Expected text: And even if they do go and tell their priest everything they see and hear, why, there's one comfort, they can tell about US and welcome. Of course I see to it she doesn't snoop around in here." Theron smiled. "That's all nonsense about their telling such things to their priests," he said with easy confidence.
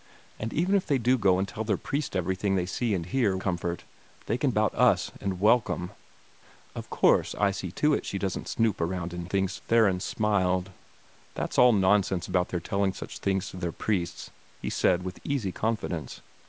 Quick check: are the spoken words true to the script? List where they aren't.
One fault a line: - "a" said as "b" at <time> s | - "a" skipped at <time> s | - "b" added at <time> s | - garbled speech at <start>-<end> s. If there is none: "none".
- "why there's one" skipped at 3.4 s
- "tell" skipped at 4.5 s
- "here" said as "things" at 9.3 s